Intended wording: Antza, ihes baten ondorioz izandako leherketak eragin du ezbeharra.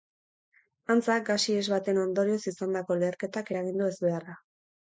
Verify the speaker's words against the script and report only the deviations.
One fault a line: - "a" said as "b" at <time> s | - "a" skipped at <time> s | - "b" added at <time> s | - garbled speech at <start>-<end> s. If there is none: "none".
- "gas" added at 1.3 s